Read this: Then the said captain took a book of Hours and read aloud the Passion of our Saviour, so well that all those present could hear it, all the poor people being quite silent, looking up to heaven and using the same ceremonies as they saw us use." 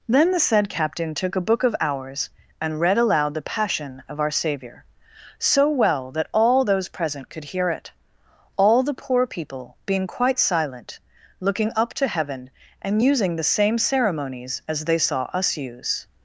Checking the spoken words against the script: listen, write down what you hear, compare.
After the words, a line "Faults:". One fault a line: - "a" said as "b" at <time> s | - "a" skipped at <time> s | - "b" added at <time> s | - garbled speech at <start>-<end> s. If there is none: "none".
Then the said captain took a book of Hours and read aloud the Passion of our Saviour, so well that all those present could hear it, all the poor people being quite silent, looking up to heaven and using the same ceremonies as they saw us use."
Faults:
none